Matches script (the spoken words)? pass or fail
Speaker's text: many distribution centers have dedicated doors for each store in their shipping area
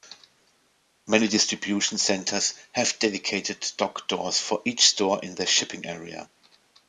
fail